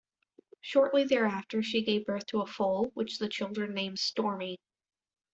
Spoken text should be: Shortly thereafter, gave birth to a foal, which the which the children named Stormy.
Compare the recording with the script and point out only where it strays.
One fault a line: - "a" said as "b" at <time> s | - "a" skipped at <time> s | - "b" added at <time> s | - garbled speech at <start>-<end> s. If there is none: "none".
- "she" added at 1.6 s
- "which the" skipped at 3.3 s